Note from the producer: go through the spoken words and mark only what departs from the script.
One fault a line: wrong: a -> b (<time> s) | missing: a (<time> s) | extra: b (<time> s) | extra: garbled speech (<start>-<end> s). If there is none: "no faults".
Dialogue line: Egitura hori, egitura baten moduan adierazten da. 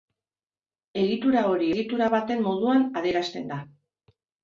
no faults